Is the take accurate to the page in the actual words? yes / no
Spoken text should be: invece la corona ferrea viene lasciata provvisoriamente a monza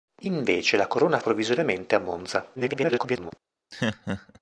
no